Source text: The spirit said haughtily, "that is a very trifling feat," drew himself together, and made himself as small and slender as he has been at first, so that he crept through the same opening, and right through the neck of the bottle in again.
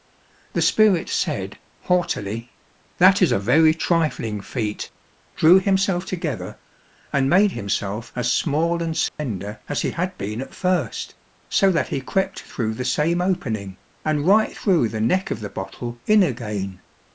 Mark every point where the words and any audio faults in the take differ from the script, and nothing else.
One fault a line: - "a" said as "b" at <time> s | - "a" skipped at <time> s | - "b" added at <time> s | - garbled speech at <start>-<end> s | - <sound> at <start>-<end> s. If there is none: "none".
- dropout at 9.1-9.2 s
- "has" said as "had" at 9.9 s